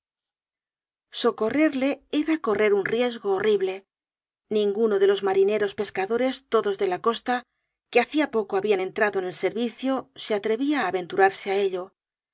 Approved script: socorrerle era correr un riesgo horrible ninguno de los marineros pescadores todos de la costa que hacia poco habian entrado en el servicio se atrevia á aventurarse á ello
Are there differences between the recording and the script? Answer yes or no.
no